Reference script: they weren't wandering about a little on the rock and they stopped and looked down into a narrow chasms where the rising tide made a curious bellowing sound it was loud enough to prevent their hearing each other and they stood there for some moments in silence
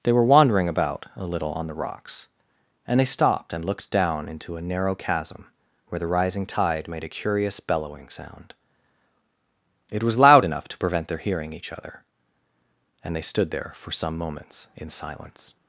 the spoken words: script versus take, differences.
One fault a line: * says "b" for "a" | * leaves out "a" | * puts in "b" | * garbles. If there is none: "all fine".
* says "were" for "weren't"
* says "rocks" for "rock"
* says "chasm" for "chasms"